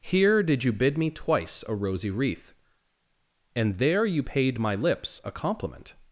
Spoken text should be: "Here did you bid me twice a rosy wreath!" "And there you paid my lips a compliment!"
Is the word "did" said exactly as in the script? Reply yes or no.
yes